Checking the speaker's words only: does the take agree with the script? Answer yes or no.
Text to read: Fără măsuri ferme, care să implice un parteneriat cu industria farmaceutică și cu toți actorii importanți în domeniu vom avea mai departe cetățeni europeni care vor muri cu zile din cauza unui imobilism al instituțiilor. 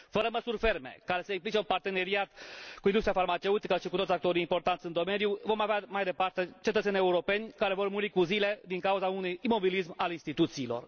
yes